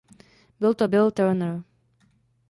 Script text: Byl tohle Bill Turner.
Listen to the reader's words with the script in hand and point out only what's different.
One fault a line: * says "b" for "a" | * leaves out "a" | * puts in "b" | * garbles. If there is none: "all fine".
* says "to" for "tohle"